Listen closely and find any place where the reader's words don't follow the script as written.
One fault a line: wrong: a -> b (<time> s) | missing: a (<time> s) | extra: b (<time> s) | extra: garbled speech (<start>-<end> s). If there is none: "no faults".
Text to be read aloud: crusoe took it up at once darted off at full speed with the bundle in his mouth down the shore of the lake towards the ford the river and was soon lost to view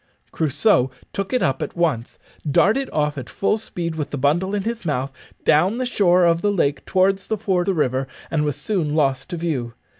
no faults